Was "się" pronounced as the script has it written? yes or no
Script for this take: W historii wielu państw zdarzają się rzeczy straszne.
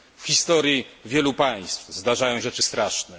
no